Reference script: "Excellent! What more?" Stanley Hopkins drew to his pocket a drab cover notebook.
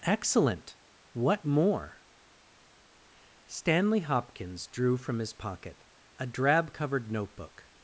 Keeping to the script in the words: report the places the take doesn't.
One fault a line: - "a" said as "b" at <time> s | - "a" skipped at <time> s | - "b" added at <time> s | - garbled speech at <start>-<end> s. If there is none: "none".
- "to" said as "from" at 5.0 s
- "cover" said as "covered" at 6.7 s